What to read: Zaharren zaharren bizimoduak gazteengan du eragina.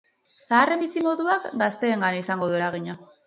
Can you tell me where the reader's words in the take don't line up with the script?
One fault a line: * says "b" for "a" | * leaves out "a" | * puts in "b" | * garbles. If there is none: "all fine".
* leaves out "zaharren"
* puts in "izango"